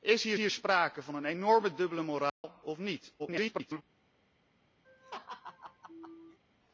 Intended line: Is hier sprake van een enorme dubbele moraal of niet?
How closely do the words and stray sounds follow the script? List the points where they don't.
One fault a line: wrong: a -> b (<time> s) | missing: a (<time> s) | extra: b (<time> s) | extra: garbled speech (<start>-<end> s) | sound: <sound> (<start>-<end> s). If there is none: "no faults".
extra: hier (0.4 s)
sound: dropout (2.3-2.4 s)
extra: garbled speech (3.2-3.8 s)
sound: laugh (4.8-6.4 s)